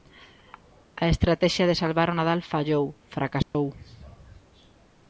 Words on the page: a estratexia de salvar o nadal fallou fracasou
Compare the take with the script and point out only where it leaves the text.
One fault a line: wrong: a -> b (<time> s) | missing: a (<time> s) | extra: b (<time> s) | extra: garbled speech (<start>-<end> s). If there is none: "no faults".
no faults